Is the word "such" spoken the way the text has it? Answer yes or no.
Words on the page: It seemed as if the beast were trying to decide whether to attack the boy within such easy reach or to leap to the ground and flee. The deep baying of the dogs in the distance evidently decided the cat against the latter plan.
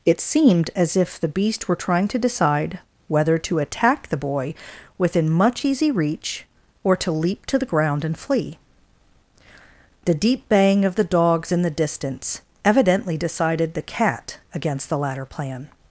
no